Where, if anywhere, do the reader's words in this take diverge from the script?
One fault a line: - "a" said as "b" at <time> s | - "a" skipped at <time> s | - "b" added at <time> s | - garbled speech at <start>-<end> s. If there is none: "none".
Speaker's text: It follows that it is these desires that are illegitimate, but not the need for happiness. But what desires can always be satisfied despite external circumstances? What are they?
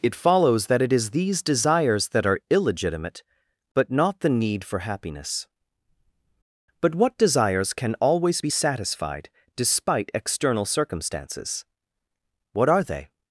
none